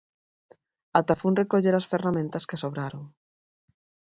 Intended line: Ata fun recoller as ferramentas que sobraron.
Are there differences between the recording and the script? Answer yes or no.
no